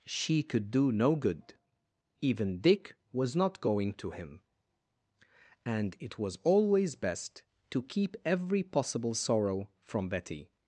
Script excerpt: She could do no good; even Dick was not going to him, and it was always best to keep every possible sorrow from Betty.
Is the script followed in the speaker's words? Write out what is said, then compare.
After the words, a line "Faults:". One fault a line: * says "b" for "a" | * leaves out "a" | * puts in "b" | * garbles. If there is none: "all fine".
She could do no good; even Dick was not going to him, and it was always best to keep every possible sorrow from Betty.
Faults:
all fine